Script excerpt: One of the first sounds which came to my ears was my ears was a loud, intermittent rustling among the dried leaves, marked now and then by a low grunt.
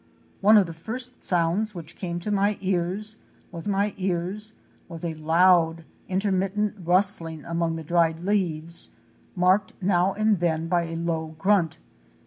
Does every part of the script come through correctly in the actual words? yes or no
yes